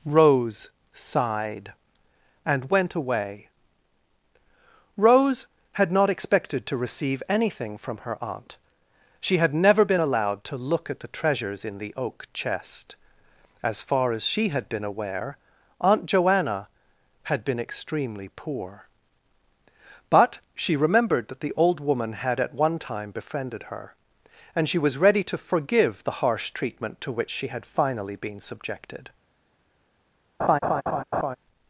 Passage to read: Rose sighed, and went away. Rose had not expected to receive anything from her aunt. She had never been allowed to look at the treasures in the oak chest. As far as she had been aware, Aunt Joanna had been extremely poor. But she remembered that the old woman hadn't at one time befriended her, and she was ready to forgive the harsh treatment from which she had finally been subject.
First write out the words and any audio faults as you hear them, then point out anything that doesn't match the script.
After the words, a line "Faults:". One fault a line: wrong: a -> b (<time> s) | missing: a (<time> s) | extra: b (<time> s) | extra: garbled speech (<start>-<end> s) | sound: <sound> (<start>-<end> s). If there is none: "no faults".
Rose sighed, and went away. Rose had not expected to receive anything from her aunt. She had never been allowed to look at the treasures in the oak chest. As far as she had been aware, Aunt Joanna had been extremely poor. But she remembered that the old woman had at one time befriended her, and she was ready to forgive the harsh treatment to which she had finally been subjected.
Faults:
wrong: hadn't -> had (22.1 s)
wrong: from -> to (27.0 s)
wrong: subject -> subjected (28.4 s)
sound: laugh (30.4-31.4 s)